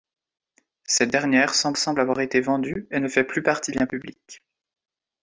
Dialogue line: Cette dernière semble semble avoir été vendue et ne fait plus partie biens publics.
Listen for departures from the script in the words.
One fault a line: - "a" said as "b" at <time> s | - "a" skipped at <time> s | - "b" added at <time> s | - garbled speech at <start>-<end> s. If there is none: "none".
none